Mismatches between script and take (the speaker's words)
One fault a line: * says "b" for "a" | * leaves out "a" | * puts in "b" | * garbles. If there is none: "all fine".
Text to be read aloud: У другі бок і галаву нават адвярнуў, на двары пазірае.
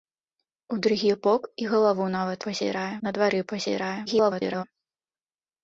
* says "пазірае" for "адвярнуў"
* garbles